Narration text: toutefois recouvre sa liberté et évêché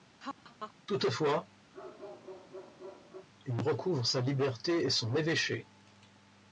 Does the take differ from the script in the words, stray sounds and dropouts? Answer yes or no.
yes